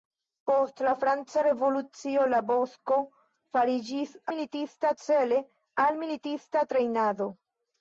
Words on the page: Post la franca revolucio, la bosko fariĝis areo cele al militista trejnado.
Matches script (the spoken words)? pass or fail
fail